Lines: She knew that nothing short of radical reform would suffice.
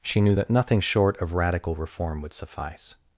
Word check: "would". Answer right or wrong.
right